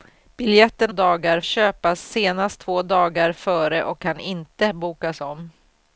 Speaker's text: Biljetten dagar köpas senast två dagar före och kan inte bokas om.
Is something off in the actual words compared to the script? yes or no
no